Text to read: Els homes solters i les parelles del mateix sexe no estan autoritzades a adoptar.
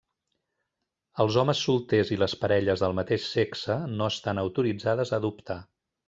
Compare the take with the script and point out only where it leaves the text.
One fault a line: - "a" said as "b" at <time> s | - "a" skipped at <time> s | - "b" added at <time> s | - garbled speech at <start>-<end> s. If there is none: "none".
none